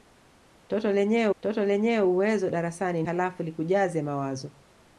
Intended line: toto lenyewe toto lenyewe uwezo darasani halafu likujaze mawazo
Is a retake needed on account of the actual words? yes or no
no